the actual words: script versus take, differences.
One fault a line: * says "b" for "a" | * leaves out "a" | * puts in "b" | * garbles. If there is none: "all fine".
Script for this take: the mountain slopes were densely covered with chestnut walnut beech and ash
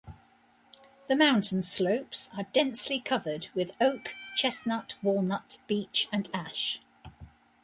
* says "are" for "were"
* puts in "oak"